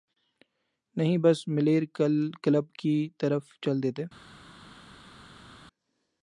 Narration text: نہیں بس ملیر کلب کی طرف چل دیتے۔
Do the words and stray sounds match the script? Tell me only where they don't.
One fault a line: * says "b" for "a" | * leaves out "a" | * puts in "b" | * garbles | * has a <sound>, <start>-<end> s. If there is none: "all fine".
all fine